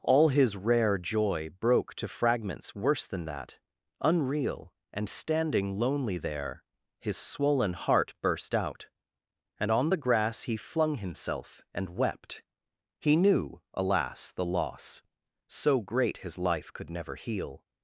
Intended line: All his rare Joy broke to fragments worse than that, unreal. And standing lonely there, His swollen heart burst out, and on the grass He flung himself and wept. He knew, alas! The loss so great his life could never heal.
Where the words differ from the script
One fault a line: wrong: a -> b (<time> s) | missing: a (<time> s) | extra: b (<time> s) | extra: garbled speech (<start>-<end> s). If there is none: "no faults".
no faults